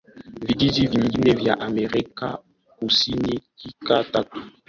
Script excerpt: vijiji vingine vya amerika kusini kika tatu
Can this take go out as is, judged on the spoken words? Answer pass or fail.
pass